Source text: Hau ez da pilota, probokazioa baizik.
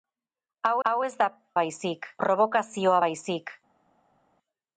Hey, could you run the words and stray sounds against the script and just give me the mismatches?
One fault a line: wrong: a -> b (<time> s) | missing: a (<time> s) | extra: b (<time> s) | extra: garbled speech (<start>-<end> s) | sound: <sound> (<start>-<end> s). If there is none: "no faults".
extra: hau (0.9 s)
wrong: pilota -> baizik (1.6 s)